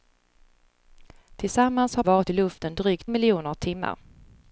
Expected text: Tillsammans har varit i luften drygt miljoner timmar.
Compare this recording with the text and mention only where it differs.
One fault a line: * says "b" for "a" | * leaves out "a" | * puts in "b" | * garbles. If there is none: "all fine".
all fine